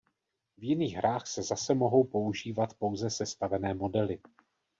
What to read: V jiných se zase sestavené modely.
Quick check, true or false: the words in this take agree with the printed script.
false